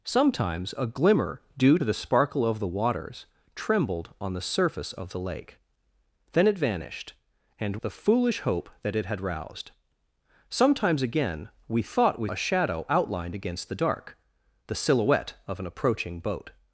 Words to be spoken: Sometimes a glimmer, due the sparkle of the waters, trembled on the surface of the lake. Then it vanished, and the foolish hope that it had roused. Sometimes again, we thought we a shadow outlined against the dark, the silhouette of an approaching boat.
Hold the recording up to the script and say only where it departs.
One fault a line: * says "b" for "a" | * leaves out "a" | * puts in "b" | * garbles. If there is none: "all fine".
all fine